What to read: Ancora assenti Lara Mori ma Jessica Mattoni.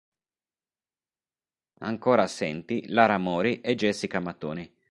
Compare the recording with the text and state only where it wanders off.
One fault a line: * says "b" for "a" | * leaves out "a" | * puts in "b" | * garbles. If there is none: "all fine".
* says "e" for "ma"